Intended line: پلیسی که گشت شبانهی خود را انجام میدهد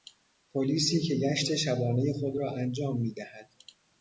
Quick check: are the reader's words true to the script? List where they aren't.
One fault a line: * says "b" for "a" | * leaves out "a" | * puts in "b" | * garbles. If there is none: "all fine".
all fine